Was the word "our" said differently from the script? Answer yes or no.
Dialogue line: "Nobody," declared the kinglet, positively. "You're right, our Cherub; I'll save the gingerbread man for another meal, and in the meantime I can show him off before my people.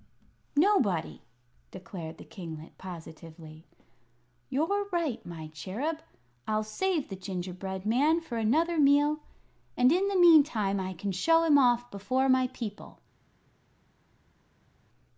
yes